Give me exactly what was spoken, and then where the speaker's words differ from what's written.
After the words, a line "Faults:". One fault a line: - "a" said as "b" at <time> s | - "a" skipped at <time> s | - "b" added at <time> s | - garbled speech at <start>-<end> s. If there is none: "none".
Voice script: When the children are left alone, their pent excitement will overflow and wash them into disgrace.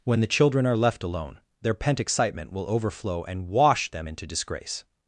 When the children are left alone, their pent excitement will overflow and wash them into disgrace.
Faults:
none